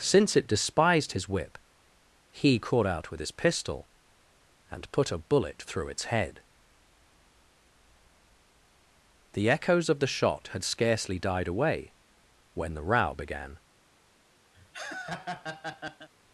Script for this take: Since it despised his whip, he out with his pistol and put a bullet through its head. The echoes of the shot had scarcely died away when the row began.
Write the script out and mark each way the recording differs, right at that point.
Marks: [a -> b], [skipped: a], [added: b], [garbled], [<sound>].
Since it despised his whip, he [added: caught] out with his pistol and put a bullet through its head. The echoes of the shot had scarcely died away when the row began. [laugh]